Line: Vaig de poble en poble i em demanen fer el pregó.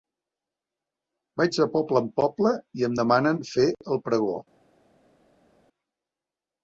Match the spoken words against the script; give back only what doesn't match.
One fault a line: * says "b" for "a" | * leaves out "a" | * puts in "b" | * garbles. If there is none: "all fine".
all fine